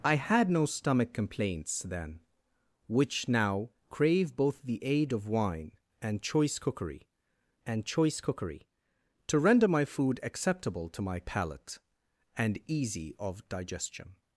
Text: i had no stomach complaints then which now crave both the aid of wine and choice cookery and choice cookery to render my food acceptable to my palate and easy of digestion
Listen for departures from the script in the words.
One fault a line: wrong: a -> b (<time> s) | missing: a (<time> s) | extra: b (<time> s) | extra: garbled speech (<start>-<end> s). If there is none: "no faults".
no faults